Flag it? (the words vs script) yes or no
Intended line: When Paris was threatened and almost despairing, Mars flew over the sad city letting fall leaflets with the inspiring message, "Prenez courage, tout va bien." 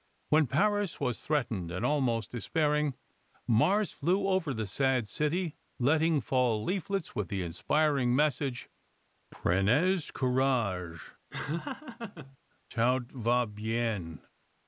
no